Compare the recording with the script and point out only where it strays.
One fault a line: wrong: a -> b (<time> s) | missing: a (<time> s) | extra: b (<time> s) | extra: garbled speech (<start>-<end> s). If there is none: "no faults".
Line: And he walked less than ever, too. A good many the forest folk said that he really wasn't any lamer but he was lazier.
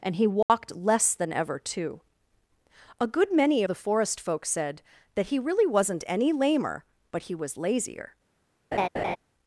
no faults